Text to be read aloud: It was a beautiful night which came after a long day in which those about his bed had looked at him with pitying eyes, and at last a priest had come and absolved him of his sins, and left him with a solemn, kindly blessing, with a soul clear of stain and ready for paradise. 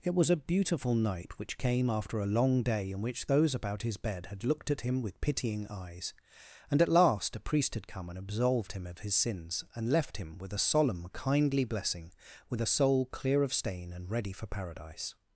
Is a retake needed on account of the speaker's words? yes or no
no